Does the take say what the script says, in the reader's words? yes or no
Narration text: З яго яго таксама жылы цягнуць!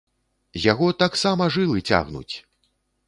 no